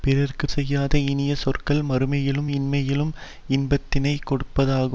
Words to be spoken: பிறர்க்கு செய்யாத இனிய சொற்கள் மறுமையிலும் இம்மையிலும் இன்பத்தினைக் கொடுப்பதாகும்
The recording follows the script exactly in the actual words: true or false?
true